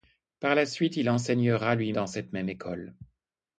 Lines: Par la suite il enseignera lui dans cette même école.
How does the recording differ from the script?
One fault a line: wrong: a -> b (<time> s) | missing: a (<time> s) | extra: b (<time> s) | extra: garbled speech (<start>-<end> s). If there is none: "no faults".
no faults